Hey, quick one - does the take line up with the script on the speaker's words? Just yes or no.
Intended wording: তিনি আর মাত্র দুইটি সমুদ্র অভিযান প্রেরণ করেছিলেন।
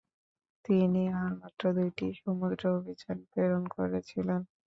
yes